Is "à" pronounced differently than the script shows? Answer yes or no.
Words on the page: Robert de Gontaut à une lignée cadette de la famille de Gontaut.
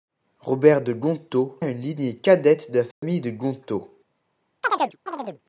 no